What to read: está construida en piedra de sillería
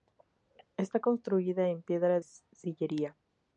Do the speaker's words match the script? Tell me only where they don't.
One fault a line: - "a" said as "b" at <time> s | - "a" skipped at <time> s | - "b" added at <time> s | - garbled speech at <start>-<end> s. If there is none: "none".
- "de" skipped at 2.2 s